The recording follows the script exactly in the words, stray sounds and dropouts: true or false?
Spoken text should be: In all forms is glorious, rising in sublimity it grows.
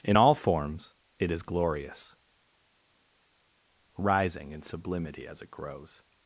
false